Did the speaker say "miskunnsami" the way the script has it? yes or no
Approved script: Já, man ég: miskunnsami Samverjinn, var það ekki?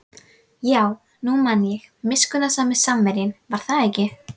yes